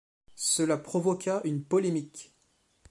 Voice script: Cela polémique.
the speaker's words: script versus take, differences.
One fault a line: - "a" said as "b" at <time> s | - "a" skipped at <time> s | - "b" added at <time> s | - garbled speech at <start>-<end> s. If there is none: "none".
- "provoqua une" added at 0.8 s